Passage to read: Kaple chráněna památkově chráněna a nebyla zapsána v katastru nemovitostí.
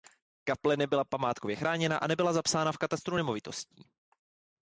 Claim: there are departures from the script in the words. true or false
true